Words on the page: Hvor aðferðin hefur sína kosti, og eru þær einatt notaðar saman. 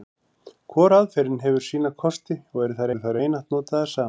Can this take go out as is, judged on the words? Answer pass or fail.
fail